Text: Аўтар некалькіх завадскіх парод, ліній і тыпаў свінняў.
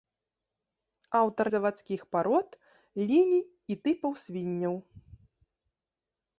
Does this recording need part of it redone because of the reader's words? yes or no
yes